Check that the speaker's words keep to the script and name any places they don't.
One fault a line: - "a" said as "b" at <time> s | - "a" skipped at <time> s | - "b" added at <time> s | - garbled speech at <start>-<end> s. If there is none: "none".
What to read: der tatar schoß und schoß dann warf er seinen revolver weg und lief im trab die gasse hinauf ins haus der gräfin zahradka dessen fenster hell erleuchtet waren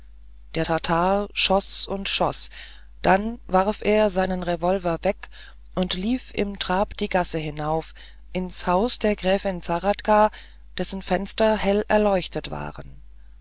none